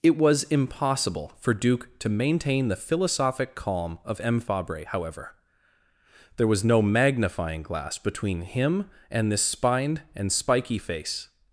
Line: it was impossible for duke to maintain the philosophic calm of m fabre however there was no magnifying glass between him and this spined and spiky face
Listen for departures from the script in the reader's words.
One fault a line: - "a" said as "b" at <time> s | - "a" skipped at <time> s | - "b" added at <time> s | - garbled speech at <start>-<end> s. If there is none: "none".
none